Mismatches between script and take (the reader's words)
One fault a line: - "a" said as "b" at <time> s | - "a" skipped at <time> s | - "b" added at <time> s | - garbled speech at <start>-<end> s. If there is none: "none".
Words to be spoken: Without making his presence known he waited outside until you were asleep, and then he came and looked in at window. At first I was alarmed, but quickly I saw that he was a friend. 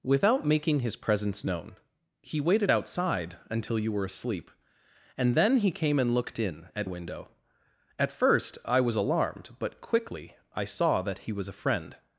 none